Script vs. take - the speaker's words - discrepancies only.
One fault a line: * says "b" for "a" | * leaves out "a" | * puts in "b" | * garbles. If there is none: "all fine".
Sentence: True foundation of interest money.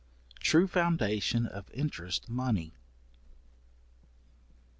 all fine